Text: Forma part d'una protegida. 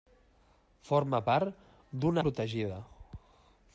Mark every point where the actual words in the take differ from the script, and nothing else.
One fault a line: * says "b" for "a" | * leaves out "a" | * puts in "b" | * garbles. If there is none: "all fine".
all fine